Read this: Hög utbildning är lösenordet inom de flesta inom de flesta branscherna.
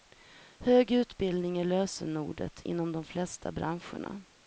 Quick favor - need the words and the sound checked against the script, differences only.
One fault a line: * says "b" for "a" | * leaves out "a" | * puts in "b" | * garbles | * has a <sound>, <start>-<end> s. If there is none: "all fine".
* leaves out "inom de flesta"